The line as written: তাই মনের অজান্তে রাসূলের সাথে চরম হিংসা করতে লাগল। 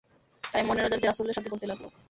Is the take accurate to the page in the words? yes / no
no